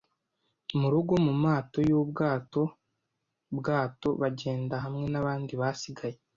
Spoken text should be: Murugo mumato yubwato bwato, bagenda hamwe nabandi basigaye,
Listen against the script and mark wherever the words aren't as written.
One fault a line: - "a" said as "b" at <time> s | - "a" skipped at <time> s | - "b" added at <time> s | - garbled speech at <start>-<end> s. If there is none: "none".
none